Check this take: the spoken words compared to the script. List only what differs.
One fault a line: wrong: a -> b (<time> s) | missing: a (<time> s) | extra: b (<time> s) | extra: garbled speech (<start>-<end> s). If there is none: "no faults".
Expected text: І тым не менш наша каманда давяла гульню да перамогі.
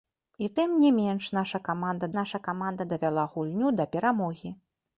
extra: наша каманда (2.2 s)